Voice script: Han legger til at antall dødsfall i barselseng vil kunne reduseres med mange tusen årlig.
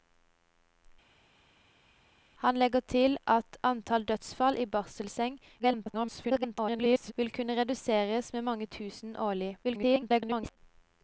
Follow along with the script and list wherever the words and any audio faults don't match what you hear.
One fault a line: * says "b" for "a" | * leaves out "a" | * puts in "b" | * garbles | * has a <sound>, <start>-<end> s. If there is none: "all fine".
* garbles
* garbles